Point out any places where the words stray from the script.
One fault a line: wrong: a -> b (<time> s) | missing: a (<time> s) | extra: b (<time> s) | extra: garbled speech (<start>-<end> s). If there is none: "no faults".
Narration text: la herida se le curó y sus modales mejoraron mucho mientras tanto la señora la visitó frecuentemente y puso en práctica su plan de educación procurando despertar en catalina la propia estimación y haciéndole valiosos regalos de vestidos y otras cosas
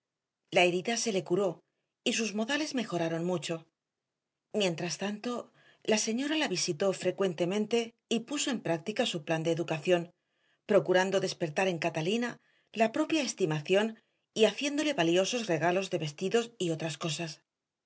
no faults